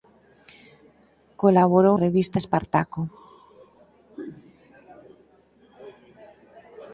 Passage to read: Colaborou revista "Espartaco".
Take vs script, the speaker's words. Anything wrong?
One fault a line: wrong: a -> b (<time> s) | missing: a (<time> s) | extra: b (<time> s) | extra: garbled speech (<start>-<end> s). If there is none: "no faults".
no faults